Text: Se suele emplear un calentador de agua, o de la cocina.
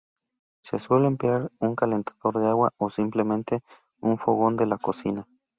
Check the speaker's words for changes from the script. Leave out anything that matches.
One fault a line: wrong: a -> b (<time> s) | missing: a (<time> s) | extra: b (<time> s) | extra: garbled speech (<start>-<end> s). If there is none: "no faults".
extra: simplemente un fogón (2.9 s)